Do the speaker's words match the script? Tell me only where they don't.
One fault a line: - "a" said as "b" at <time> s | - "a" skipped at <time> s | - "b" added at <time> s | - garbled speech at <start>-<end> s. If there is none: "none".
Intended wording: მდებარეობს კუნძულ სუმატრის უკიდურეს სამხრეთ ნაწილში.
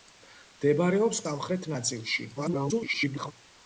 - "კუნძულ სუმატრის უკიდურეს" skipped at 1.2 s
- garbled speech at 2.4-3.3 s